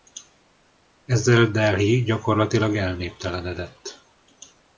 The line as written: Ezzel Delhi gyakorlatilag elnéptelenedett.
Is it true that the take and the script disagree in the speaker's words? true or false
false